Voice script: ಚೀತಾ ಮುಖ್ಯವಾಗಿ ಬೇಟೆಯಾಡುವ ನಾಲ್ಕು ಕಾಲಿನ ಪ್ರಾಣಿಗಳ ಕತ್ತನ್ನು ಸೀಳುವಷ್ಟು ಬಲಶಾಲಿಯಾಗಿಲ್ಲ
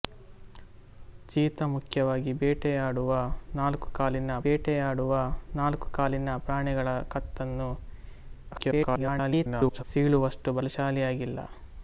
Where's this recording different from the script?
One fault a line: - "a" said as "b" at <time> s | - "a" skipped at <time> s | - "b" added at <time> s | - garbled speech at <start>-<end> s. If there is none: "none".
- "ಬೇಟೆಯಾಡುವ ನಾಲ್ಕು ಕಾಲಿನ" added at 4.4 s
- garbled speech at 8.5-9.8 s